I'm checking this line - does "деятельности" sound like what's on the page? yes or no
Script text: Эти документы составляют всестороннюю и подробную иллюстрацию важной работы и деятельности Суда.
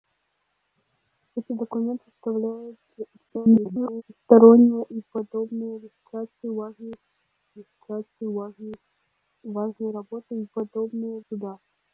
no